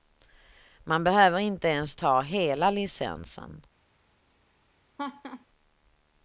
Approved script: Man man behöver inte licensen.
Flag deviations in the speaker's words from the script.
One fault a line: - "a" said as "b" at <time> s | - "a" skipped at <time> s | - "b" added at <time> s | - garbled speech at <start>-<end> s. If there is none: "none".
- "man" skipped at 1.0 s
- "ens ta hela" added at 1.7 s